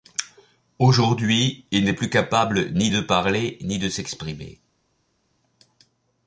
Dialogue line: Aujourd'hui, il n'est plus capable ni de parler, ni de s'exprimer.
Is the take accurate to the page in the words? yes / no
yes